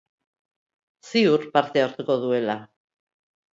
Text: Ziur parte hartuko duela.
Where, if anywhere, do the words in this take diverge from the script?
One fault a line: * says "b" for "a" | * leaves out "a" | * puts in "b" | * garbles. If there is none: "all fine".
all fine